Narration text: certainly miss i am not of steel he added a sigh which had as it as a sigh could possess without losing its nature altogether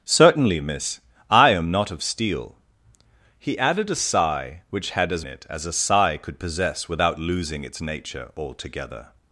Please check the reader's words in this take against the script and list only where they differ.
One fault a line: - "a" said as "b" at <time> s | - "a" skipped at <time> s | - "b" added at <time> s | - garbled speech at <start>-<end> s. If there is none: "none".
none